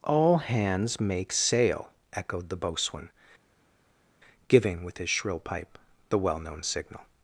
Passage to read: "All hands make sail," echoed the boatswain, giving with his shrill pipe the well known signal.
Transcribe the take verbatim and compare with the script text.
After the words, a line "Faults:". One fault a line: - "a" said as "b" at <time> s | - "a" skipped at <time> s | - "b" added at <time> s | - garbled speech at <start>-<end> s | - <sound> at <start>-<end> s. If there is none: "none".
"All hands make sail," echoed the boatswain, giving with his shrill pipe the well known signal.
Faults:
none